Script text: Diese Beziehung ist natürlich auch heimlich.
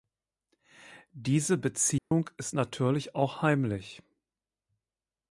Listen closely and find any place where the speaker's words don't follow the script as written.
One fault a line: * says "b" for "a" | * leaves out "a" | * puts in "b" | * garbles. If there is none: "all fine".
all fine